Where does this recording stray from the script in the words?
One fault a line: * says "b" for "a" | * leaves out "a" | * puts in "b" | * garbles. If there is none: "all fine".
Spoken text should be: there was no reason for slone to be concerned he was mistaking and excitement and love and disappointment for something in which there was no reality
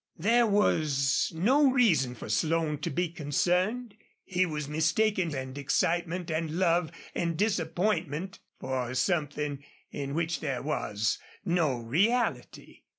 all fine